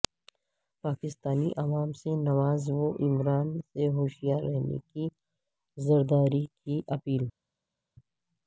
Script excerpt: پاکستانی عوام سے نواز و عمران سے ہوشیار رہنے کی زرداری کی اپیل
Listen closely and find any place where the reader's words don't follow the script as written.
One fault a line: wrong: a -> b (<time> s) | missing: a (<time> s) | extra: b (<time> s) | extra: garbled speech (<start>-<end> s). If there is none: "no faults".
no faults